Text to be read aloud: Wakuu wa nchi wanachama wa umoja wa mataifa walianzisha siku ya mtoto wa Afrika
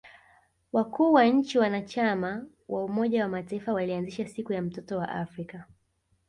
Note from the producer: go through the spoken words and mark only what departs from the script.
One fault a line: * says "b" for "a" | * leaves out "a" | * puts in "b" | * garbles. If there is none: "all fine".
all fine